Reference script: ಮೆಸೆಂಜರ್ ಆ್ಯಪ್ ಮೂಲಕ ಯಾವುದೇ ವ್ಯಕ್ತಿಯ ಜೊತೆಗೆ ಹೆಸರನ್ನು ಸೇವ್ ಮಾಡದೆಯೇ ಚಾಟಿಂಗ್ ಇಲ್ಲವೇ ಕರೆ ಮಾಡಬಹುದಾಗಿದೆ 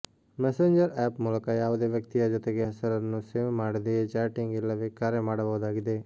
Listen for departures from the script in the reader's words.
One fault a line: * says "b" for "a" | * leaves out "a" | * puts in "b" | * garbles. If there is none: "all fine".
all fine